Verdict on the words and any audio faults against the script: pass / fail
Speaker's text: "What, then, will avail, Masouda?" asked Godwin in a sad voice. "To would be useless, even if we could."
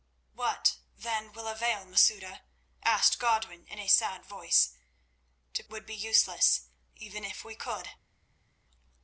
pass